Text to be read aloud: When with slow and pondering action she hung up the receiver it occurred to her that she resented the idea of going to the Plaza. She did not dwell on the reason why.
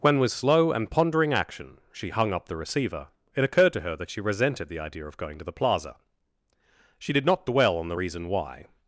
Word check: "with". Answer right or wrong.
right